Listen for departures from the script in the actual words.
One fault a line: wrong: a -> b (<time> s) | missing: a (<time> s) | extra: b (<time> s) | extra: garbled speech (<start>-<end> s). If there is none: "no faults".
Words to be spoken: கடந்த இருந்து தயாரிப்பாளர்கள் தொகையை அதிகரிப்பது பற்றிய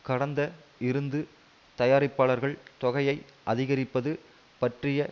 no faults